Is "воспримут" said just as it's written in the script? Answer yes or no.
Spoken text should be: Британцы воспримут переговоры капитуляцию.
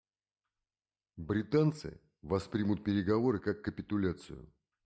yes